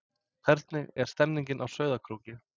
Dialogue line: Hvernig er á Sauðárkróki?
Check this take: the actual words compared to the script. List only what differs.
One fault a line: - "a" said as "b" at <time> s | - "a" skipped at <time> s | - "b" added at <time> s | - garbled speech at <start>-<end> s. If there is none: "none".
- "stemningin" added at 1.1 s